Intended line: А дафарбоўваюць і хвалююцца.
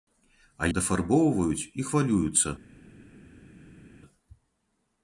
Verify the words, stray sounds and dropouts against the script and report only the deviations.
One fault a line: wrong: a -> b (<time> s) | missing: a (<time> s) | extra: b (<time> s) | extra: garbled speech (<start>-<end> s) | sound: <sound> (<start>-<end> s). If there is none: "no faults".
no faults